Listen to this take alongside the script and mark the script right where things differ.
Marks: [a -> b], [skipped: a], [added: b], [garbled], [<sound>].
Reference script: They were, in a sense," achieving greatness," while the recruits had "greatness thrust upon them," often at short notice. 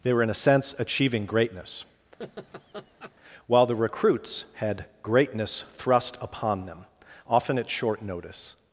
They were, in a sense," achieving greatness," [laugh] while the recruits had "greatness thrust upon them," often at short notice.